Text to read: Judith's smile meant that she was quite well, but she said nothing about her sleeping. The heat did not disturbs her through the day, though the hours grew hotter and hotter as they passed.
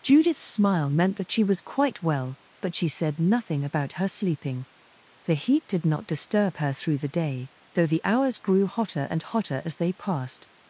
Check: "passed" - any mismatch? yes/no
no